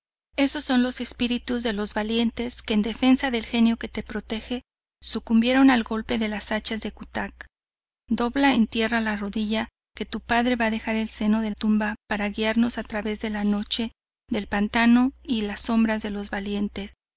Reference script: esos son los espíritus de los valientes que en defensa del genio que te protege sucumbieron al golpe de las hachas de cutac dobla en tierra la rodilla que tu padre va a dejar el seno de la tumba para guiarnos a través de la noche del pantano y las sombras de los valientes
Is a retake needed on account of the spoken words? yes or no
yes